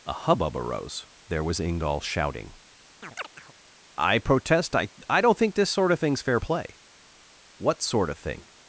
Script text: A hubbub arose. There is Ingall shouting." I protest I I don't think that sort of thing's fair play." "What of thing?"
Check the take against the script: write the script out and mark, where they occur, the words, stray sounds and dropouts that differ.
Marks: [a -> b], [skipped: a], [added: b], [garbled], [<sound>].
A hubbub arose. There [is -> was] Ingall shouting." [chirp] I protest I I don't think [that -> this] sort of thing's fair play." "What [added: sort] of thing?"